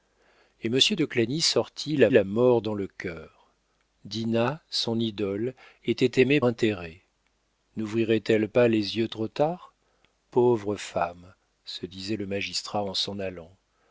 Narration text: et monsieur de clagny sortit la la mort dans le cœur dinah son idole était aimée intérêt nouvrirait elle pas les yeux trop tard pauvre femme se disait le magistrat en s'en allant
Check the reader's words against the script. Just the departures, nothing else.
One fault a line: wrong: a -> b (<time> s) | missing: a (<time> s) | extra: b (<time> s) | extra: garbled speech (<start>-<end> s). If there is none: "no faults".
no faults